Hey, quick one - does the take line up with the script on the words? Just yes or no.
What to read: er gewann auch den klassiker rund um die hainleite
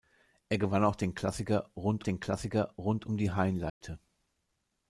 no